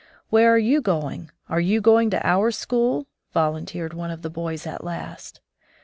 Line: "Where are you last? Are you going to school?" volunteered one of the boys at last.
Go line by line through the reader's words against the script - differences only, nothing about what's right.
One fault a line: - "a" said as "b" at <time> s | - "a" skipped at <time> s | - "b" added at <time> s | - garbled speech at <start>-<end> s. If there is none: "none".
- "last" said as "going" at 0.8 s
- "our" added at 2.3 s